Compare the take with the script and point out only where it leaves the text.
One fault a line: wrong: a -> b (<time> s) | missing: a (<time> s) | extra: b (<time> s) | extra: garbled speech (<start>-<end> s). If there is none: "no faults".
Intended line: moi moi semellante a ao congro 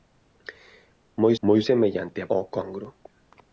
no faults